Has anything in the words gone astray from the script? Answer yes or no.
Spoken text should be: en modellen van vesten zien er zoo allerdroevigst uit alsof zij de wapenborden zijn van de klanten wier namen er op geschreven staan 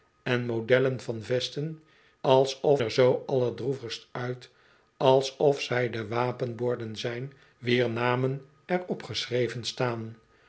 yes